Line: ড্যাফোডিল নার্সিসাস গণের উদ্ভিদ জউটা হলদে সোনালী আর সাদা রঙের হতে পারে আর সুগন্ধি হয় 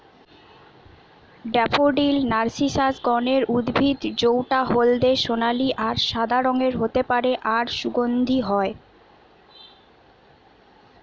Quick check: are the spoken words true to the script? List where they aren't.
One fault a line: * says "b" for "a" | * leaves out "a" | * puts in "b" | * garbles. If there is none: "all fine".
all fine